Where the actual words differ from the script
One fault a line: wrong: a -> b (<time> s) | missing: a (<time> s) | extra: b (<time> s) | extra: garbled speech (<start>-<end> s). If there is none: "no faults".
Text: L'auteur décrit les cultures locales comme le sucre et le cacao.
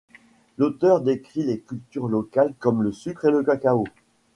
no faults